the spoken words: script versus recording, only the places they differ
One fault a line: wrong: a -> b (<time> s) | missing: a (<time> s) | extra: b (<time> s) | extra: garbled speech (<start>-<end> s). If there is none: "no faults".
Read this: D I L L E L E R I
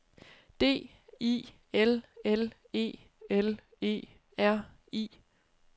no faults